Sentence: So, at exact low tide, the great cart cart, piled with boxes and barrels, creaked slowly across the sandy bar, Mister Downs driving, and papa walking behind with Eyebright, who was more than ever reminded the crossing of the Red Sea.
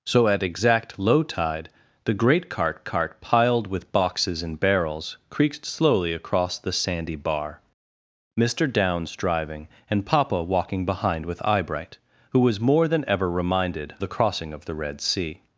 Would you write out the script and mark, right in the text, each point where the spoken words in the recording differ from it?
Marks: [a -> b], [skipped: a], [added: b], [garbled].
So, at exact low tide, the great cart cart, piled with boxes and barrels, creaked slowly across the sandy bar, Mister Downs driving, and papa walking behind with Eyebright, who was more than ever reminded the crossing of the Red Sea.